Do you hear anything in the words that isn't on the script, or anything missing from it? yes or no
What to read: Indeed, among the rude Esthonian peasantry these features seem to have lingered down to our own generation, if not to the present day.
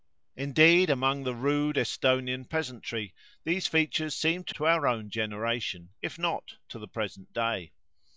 yes